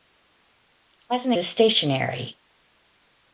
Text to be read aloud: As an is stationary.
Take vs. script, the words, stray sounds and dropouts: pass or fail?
pass